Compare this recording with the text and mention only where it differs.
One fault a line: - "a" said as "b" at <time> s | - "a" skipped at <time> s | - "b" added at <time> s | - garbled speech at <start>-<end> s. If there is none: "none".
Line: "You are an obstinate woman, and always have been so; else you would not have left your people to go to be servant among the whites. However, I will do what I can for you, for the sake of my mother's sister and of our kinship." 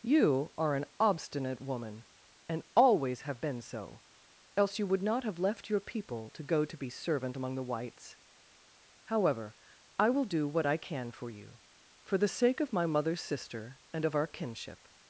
none